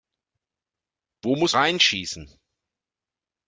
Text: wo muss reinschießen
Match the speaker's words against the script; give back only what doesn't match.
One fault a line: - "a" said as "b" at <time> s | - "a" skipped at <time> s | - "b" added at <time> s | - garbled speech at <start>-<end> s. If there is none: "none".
none